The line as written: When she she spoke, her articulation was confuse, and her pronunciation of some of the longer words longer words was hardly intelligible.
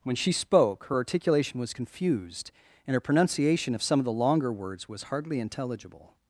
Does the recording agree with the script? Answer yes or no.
no